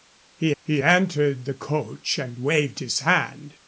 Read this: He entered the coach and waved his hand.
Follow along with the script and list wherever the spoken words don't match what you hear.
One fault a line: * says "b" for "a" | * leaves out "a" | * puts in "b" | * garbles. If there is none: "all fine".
* puts in "he"